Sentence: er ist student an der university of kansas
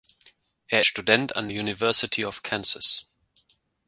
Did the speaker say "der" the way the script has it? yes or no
no